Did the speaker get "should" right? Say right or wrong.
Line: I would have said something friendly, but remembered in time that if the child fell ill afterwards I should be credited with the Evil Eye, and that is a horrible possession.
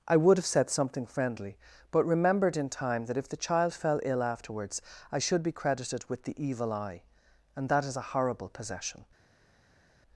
right